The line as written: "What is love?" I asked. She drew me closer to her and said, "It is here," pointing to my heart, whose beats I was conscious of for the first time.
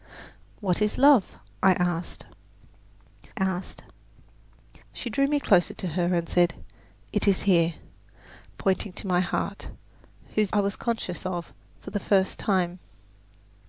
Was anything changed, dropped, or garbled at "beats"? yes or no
yes